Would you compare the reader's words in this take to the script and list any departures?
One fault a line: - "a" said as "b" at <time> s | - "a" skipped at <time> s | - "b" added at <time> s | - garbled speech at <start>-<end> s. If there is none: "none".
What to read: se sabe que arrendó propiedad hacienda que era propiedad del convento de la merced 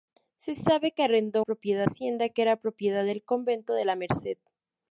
none